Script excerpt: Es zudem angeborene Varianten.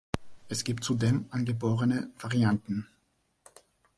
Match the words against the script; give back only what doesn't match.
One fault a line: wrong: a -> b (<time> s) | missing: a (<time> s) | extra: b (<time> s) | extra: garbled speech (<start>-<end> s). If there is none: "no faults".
extra: gibt (0.6 s)